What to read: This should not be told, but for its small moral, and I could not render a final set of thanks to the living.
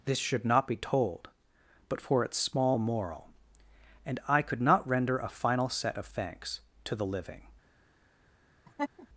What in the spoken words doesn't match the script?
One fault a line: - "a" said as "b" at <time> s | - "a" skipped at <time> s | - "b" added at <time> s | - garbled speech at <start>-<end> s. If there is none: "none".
none